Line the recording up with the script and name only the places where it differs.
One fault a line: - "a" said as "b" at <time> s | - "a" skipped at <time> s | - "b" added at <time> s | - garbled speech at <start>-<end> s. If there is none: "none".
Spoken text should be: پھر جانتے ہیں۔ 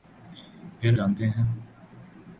none